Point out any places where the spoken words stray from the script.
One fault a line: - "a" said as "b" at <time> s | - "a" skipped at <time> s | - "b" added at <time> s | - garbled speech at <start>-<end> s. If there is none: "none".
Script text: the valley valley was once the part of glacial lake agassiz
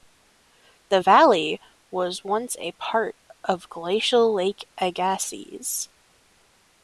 - "valley" skipped at 1.6 s
- "the" said as "a" at 2.6 s